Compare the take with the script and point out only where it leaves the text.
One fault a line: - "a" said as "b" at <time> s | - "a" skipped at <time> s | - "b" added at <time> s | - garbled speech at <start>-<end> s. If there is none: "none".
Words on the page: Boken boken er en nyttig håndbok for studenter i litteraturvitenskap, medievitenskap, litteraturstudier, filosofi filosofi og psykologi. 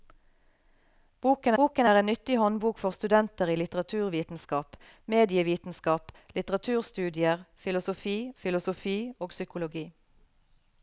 none